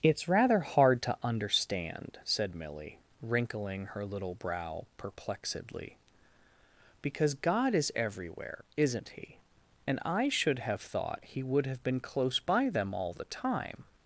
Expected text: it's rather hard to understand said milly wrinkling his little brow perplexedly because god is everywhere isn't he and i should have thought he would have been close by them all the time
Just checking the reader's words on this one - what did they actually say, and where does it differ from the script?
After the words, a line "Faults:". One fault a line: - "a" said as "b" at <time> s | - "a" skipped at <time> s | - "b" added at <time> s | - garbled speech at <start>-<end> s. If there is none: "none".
it's rather hard to understand said milly wrinkling her little brow perplexedly because god is everywhere isn't he and i should have thought he would have been close by them all the time
Faults:
- "his" said as "her" at 3.9 s